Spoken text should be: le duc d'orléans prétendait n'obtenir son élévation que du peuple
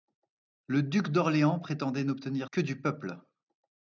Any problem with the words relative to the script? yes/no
yes